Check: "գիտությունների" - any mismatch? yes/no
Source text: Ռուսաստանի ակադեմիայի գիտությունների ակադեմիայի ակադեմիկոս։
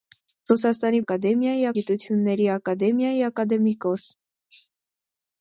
no